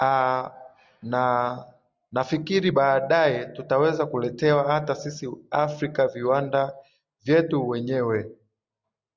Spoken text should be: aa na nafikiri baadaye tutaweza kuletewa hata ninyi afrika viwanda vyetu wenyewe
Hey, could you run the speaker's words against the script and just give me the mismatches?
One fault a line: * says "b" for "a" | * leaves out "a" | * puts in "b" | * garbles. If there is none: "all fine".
* says "sisi" for "ninyi"